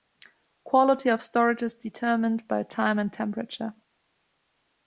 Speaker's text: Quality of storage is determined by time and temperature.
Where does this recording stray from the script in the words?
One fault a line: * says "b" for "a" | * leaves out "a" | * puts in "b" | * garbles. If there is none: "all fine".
all fine